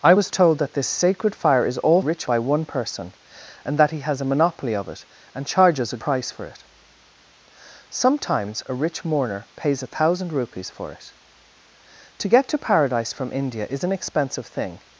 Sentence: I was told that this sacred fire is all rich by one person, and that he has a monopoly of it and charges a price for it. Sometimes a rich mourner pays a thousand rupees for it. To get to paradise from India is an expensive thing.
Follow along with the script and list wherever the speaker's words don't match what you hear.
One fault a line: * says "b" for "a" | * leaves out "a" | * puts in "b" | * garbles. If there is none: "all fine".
all fine